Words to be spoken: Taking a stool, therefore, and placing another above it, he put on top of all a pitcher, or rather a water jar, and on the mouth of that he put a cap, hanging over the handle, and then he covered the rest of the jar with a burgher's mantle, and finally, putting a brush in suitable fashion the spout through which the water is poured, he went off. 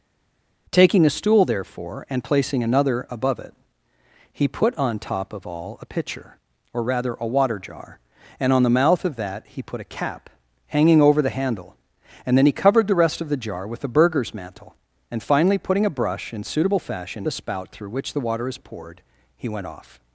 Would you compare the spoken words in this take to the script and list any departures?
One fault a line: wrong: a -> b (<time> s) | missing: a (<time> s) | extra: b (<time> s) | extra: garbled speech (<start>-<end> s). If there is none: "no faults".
no faults